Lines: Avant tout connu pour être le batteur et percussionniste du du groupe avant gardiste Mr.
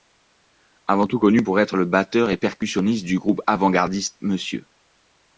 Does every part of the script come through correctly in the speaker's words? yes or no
no